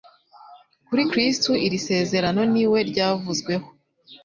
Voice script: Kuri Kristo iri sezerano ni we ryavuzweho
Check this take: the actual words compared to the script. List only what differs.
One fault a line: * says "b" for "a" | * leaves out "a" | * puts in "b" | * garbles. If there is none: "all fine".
all fine